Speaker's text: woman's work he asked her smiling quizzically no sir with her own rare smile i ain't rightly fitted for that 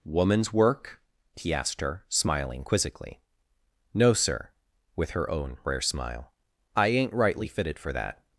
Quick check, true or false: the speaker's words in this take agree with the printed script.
true